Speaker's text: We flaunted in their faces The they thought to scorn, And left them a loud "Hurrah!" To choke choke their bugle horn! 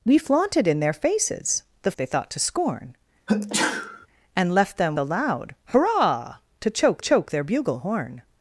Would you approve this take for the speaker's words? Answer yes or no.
yes